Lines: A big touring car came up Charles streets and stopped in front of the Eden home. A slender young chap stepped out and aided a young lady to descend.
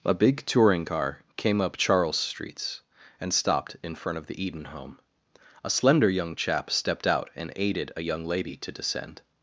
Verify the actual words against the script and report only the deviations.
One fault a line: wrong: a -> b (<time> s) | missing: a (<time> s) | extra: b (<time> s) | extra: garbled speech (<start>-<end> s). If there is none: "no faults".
no faults